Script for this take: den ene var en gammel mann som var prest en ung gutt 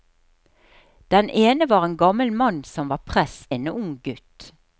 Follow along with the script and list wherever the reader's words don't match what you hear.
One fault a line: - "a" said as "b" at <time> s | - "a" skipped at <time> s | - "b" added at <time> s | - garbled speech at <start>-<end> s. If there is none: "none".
none